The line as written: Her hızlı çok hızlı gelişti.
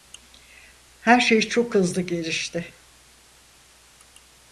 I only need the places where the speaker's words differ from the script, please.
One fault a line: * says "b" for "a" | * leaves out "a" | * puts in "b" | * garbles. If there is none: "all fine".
* says "şey" for "hızlı"